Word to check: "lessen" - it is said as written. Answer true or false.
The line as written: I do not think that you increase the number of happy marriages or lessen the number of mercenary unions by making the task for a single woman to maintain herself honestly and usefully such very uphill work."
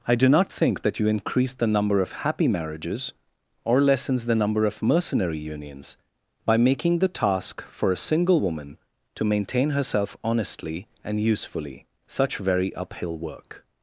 false